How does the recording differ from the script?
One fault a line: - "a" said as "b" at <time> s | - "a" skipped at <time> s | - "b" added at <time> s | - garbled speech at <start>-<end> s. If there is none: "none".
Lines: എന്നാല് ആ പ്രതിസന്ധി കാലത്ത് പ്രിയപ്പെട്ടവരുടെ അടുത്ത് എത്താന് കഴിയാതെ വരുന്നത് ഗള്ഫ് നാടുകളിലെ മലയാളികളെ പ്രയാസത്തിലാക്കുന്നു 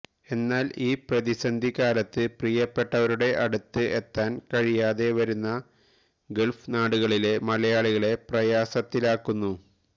- "ആ" said as "ഈ" at 0.8 s